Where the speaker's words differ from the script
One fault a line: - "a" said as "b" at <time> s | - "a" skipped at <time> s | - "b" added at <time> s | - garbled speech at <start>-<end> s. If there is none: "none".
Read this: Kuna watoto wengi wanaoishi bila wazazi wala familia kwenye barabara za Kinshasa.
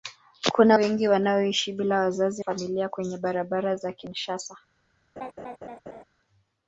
- "watoto" skipped at 0.8 s
- "wala" skipped at 2.4 s